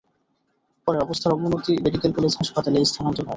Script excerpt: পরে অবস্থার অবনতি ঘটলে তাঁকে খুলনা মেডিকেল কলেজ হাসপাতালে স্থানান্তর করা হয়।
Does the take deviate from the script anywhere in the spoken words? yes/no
yes